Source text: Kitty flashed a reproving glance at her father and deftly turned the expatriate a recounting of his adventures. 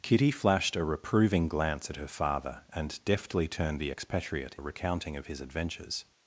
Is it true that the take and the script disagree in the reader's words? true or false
false